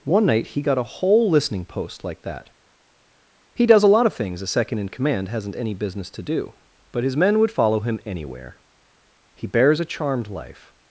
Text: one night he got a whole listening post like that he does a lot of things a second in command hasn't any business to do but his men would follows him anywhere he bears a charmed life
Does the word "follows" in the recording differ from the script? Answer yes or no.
yes